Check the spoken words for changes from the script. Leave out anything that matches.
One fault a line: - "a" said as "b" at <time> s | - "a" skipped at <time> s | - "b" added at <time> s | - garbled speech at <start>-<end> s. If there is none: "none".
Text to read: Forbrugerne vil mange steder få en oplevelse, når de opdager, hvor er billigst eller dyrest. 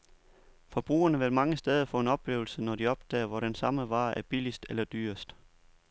- "den samme vare" added at 3.4 s